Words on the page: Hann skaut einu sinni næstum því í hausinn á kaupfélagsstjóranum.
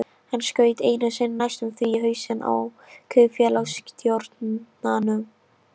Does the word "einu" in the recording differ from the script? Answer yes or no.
no